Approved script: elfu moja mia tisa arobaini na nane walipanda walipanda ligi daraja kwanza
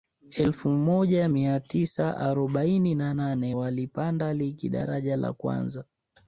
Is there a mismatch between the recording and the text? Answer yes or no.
yes